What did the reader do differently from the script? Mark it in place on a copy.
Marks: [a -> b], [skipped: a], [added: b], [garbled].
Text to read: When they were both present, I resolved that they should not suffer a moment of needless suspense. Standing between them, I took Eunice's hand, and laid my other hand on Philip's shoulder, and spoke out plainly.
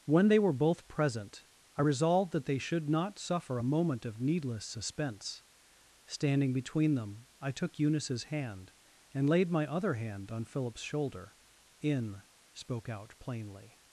When they were both present, I resolved that they should not suffer a moment of needless suspense. Standing between them, I took Eunice's hand, and laid my other hand on Philip's shoulder, [and -> in] spoke out plainly.